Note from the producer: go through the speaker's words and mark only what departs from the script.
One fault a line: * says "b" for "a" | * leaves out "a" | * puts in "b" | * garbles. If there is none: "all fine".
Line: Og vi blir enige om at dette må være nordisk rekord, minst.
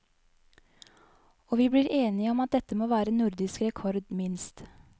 all fine